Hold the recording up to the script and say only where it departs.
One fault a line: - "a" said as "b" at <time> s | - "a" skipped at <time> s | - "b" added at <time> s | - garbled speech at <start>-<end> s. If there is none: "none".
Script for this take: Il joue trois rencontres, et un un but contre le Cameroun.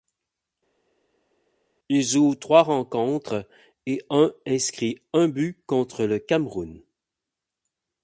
- "inscrit" added at 4.5 s